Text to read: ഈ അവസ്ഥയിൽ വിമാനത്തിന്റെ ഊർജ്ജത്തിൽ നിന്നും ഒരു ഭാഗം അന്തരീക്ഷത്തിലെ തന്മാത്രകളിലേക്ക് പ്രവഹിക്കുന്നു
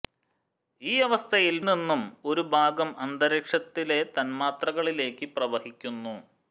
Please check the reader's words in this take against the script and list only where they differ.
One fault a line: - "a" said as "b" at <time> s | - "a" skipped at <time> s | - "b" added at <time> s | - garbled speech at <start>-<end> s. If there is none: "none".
- "വിമാനത്തിന്റെ ഊർജ്ജത്തിൽ" skipped at 1.6 s